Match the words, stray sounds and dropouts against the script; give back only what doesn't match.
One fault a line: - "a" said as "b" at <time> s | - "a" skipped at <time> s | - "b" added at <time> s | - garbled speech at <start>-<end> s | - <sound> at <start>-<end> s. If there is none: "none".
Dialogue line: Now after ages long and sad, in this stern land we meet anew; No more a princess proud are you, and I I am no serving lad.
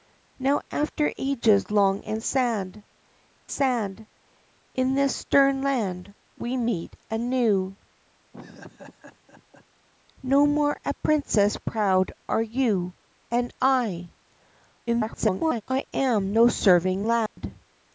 - "sad" added at 3.5 s
- laugh at 8.3-9.7 s
- garbled speech at 14.9-15.6 s
- dropout at 17.3-17.4 s